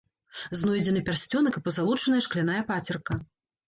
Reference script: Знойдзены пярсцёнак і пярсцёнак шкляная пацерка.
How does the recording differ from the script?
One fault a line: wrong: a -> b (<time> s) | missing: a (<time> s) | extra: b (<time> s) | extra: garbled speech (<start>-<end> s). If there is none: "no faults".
wrong: пярсцёнак -> пазалочаная (1.7 s)